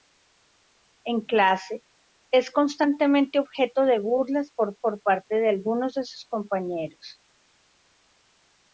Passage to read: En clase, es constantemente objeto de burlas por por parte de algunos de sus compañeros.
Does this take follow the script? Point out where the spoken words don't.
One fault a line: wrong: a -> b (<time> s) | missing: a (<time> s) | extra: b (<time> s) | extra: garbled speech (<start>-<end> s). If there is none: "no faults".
no faults